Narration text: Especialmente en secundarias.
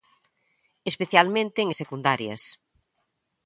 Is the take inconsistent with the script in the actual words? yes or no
no